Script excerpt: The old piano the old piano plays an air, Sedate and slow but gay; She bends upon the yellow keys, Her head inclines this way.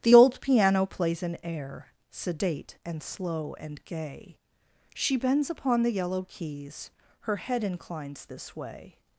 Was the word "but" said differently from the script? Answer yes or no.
yes